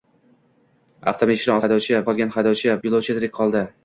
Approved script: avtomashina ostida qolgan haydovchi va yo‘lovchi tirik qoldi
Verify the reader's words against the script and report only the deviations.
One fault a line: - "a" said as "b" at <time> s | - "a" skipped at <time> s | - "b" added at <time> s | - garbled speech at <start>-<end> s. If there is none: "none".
- "ostida" said as "haydovchi" at 1.6 s
- "va" skipped at 2.8 s